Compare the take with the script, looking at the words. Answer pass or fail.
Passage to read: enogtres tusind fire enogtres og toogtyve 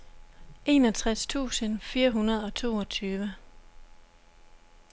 fail